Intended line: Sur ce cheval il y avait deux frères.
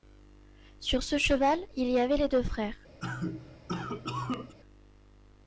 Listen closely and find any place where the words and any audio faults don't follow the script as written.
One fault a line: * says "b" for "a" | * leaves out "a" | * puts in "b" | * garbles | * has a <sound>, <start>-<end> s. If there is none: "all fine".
* puts in "les"
* has a cough, 3.0-4.5 s